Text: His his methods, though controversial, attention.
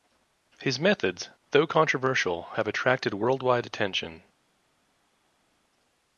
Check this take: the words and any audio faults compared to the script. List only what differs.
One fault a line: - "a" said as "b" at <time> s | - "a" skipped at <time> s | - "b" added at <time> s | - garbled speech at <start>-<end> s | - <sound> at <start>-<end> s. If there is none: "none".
- "his" skipped at 0.8 s
- "have attracted worldwide" added at 2.5 s